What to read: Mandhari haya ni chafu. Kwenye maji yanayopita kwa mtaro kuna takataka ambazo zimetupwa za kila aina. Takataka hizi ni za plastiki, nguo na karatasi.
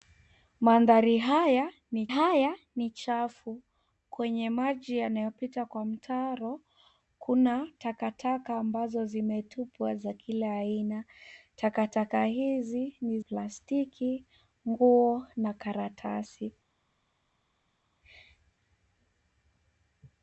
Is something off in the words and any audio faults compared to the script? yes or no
yes